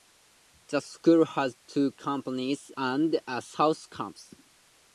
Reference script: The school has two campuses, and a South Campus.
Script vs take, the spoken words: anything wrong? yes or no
no